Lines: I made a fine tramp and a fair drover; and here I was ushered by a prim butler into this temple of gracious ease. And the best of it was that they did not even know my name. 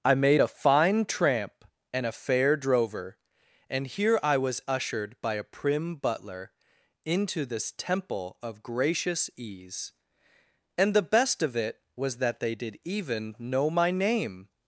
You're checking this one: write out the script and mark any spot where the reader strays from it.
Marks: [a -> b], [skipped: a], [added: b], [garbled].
I made a fine tramp and a fair drover; and here I was ushered by a prim butler into this temple of gracious ease. And the best of it was that they did [skipped: not] even know my name.